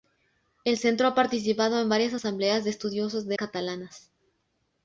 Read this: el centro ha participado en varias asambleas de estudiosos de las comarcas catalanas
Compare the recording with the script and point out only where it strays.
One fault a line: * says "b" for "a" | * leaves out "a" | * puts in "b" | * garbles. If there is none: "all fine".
* leaves out "las comarcas"